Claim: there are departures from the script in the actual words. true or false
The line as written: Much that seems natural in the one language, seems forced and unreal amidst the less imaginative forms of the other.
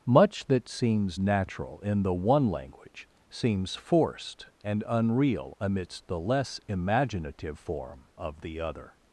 true